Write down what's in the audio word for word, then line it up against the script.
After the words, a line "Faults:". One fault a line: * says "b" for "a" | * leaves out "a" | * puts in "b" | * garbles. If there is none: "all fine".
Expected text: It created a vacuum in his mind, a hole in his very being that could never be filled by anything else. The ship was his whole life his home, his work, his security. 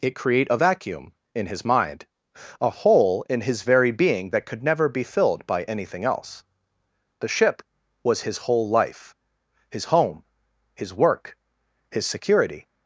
It create a vacuum in his mind, a hole in his very being that could never be filled by anything else. The ship was his whole life his home, his work, his security.
Faults:
* says "create" for "created"